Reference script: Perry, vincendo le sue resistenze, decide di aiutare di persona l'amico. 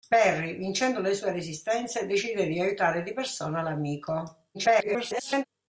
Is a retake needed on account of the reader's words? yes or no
yes